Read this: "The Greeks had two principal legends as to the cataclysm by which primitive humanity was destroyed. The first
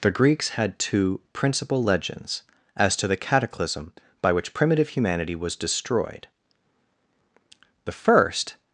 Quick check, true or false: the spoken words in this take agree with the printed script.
true